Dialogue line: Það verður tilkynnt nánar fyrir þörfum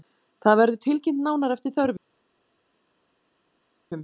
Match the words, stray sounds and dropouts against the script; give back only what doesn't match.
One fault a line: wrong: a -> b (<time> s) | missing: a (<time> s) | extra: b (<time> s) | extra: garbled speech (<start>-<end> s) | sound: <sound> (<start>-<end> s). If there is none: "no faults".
wrong: fyrir -> eftir (1.6 s)